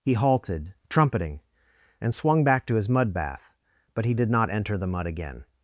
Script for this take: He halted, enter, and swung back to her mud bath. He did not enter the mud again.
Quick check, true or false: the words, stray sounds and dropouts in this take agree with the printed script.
false